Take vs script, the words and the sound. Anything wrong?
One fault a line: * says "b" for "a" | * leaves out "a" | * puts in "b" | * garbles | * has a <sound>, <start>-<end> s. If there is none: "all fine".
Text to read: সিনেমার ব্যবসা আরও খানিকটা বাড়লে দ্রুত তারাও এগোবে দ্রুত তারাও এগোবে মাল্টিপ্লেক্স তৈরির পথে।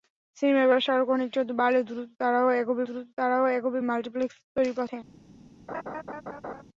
* has a laugh, 5.7-6.6 s